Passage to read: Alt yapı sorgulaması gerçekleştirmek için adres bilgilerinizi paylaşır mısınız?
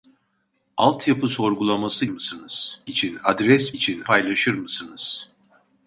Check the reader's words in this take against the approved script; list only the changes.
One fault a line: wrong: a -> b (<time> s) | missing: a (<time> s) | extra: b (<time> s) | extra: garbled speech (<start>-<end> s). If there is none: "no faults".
wrong: gerçekleştirmek -> mısınız (2.1 s)
wrong: bilgilerinizi -> için (3.7 s)